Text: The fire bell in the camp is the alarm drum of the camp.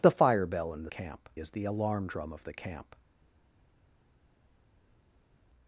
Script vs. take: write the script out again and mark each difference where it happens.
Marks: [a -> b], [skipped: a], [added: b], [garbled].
The fire bell in the camp is the alarm drum of the camp.